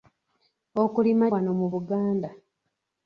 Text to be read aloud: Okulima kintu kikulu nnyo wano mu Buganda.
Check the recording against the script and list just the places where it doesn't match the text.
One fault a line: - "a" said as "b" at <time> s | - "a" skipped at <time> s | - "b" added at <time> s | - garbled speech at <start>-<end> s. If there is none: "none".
- "kintu kikulu nnyo" skipped at 1.2 s